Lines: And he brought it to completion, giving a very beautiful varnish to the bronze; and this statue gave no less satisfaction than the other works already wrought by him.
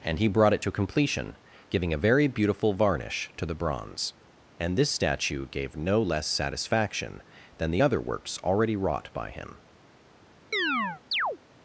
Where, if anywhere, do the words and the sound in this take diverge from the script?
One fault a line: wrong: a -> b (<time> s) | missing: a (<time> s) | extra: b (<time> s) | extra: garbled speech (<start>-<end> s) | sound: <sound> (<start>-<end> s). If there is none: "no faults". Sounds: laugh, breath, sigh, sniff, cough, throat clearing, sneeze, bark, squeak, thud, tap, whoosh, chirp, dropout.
sound: chirp (10.5-11.4 s)